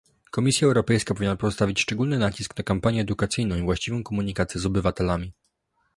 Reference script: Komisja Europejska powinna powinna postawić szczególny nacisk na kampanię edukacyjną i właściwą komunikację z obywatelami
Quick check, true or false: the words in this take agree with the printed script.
false